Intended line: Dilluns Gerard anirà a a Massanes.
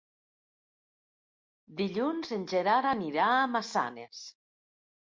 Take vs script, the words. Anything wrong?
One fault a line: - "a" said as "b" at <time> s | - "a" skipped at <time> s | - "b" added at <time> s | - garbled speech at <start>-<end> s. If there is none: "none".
- "en" added at 2.4 s
- "a" skipped at 3.5 s